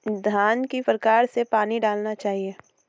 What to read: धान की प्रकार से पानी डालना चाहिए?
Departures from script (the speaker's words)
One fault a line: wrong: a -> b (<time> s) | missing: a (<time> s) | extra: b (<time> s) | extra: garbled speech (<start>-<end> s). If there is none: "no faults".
no faults